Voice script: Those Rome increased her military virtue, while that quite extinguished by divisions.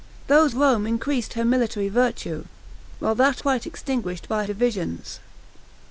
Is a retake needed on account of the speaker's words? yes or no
no